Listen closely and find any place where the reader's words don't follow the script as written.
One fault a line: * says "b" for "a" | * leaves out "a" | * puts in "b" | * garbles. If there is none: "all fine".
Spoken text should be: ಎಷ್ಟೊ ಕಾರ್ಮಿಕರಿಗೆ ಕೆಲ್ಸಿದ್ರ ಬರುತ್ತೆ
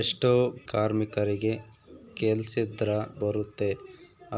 all fine